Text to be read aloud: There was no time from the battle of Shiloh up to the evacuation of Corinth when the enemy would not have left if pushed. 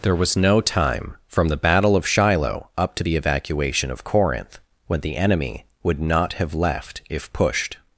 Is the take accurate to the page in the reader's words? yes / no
yes